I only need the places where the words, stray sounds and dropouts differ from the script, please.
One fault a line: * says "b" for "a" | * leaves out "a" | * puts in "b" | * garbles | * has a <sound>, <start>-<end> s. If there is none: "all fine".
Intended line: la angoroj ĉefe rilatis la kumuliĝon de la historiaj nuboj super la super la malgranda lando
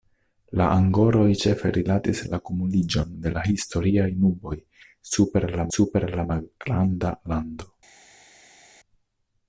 all fine